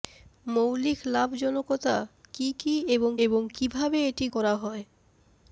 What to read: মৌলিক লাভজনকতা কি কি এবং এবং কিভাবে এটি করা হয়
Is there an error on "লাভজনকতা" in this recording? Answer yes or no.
no